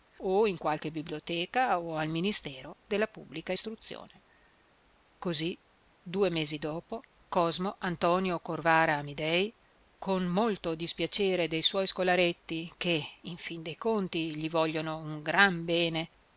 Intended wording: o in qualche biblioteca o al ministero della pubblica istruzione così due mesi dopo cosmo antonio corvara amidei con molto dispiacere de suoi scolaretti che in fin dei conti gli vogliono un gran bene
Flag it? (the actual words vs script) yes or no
no